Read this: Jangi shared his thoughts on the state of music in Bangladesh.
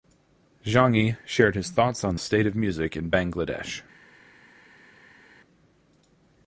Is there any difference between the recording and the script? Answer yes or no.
yes